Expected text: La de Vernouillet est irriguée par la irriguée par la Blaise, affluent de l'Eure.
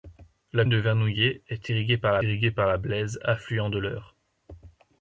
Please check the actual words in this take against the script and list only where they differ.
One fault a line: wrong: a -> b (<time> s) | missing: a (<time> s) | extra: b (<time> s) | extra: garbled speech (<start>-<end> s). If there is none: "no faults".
no faults